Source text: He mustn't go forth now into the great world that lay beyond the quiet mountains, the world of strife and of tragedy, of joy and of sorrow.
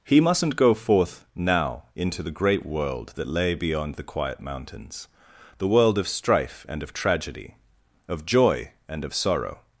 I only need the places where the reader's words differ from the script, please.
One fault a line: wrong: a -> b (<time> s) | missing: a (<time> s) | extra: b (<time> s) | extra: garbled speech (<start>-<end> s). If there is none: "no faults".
no faults